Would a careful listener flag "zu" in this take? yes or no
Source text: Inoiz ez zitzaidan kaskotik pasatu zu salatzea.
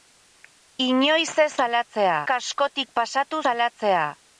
yes